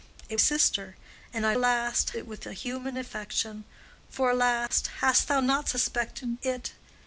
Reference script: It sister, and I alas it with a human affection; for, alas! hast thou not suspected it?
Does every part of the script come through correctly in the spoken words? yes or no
yes